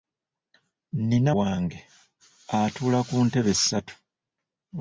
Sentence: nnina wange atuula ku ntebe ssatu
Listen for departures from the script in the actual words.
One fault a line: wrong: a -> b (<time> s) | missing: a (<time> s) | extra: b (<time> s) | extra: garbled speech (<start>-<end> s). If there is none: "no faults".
no faults